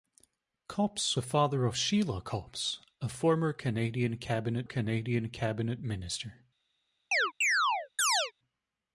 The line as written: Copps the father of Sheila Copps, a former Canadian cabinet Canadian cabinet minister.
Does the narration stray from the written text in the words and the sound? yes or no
yes